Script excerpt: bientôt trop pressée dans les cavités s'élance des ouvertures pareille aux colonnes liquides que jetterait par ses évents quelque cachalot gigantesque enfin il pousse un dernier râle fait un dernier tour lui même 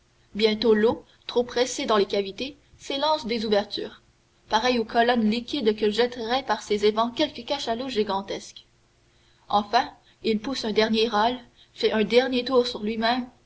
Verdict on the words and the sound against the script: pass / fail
fail